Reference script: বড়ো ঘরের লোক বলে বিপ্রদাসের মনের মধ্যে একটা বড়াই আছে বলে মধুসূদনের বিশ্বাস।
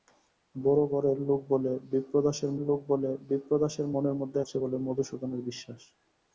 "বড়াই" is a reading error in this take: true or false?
true